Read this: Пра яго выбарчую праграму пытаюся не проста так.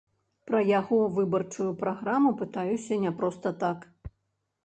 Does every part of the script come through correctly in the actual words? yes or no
yes